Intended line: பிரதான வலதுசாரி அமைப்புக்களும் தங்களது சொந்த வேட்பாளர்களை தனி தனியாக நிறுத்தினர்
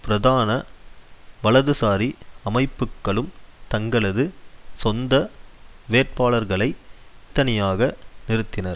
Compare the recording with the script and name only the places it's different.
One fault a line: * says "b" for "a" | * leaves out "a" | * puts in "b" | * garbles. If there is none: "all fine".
* leaves out "தனி"